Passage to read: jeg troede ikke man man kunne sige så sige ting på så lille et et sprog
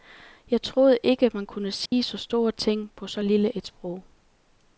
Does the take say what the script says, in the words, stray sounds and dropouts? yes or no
no